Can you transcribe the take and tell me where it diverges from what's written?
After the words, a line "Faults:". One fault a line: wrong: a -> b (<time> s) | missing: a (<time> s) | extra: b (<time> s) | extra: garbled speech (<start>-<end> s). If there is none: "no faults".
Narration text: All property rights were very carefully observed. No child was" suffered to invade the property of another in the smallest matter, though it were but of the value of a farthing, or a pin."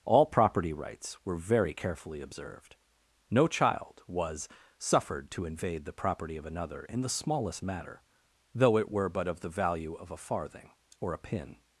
All property rights were very carefully observed. No child was" suffered to invade the property of another in the smallest matter, though it were but of the value of a farthing, or a pin."
Faults:
no faults